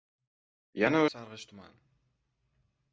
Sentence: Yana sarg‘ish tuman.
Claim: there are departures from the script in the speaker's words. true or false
false